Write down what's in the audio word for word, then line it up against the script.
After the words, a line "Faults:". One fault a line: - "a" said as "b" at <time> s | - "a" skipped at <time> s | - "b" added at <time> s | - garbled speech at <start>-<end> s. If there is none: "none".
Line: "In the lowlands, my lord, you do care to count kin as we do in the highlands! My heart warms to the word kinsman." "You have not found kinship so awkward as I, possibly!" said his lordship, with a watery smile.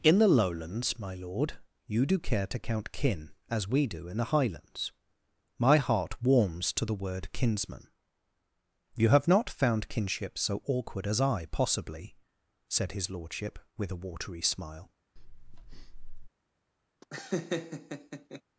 "In the lowlands, my lord, you do care to count kin as we do in the highlands! My heart warms to the word kinsman." "You have not found kinship so awkward as I, possibly!" said his lordship, with a watery smile.
Faults:
none